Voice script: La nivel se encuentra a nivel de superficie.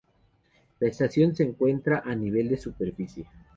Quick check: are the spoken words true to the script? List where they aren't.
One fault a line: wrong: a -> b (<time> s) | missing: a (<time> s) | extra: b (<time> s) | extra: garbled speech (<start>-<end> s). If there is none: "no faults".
wrong: nivel -> estación (0.9 s)